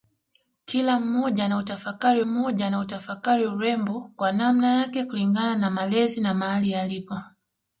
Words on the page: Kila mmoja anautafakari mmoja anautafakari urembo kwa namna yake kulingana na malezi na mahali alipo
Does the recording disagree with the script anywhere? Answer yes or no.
no